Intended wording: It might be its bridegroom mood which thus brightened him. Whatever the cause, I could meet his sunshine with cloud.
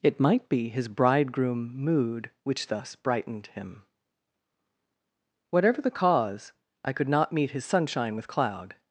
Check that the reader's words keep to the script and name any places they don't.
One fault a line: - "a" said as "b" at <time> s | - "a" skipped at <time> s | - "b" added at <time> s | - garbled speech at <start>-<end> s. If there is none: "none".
- "its" said as "his" at 0.7 s
- "not" added at 7.1 s